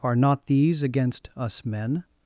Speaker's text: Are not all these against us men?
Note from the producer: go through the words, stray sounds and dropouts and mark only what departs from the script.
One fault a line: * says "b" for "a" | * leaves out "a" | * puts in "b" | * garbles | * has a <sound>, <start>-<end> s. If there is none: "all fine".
* leaves out "all"